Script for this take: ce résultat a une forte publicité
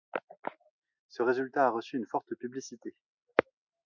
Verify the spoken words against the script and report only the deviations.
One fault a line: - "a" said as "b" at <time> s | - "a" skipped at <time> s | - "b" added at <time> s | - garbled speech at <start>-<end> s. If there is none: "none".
- "reçu" added at 1.7 s